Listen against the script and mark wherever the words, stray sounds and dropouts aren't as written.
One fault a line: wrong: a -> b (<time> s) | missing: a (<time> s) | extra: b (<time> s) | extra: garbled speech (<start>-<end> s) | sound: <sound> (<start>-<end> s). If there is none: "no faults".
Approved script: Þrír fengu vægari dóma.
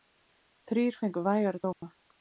sound: dropout (1.7-1.8 s)